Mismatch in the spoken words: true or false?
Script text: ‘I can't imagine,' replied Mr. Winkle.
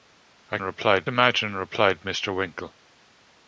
true